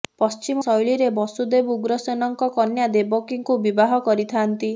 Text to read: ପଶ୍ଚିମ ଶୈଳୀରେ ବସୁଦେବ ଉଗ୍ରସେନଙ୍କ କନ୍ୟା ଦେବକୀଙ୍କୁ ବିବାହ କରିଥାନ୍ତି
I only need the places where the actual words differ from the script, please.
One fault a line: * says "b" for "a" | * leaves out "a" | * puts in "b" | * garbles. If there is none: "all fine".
all fine